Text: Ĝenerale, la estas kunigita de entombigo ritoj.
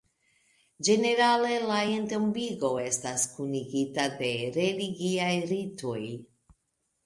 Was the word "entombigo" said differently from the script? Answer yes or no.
yes